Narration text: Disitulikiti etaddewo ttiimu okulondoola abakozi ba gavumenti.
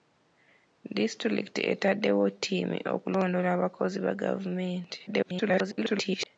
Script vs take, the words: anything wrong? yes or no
yes